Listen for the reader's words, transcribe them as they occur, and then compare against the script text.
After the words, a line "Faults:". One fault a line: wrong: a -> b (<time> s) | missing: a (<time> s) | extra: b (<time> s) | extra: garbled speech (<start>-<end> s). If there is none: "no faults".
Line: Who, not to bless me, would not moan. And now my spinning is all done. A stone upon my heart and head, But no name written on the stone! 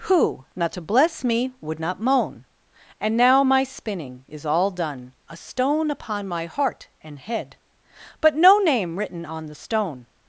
Who, not to bless me, would not moan. And now my spinning is all done. A stone upon my heart and head, But no name written on the stone!
Faults:
no faults